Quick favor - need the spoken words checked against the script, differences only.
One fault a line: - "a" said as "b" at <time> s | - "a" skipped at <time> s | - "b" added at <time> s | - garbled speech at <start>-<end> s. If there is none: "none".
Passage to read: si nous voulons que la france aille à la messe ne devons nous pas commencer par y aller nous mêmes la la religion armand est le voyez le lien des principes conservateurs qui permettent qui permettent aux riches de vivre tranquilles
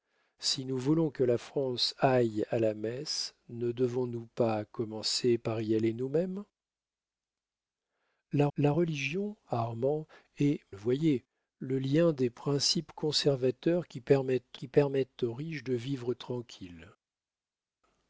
none